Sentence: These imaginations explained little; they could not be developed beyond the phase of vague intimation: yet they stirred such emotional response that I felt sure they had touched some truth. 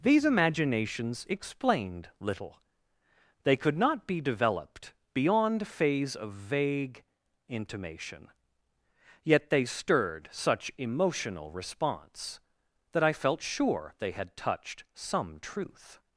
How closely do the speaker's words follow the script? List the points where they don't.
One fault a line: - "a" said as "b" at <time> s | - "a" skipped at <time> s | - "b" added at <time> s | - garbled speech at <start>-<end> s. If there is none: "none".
- "the" skipped at 5.7 s